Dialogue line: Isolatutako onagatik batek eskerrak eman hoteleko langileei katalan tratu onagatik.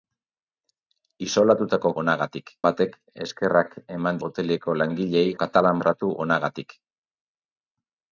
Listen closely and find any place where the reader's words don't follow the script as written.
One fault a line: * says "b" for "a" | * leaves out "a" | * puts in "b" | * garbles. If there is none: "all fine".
all fine